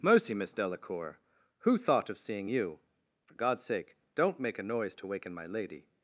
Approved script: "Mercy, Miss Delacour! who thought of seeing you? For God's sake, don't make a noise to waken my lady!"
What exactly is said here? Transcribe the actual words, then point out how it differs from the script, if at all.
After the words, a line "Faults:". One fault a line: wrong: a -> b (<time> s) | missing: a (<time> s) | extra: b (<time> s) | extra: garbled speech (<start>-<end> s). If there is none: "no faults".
"Mercy, Miss Delacour! who thought of seeing you? For God's sake, don't make a noise to waken my lady!"
Faults:
no faults